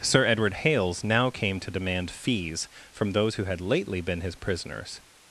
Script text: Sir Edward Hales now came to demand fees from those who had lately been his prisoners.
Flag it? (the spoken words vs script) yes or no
no